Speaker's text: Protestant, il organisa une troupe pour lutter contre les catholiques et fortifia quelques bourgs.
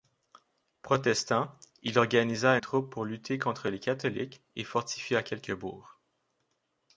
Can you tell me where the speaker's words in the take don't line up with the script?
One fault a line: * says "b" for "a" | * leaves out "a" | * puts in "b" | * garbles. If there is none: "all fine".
* leaves out "une"